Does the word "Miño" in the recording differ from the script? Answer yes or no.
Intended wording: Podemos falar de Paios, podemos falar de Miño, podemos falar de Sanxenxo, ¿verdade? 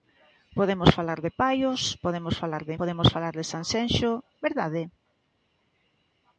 yes